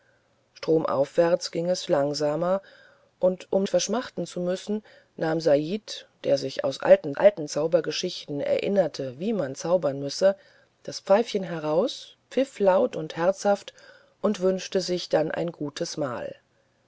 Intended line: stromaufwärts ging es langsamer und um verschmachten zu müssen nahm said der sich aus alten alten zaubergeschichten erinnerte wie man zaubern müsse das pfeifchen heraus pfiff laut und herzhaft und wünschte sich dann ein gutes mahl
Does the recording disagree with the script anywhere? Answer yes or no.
no